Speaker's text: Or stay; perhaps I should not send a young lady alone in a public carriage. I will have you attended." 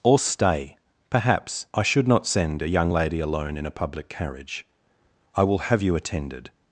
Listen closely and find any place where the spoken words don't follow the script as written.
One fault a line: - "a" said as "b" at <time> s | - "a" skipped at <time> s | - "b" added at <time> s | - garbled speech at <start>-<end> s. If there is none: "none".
none